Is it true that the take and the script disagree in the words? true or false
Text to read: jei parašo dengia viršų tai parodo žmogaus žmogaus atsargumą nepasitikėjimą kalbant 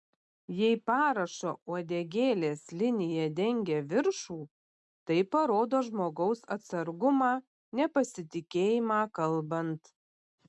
true